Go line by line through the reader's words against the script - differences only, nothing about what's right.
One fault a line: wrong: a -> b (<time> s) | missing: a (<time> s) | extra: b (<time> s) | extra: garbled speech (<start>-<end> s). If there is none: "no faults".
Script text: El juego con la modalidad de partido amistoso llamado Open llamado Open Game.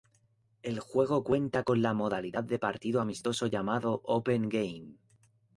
extra: cuenta (1.2 s)
missing: llamado Open (4.5 s)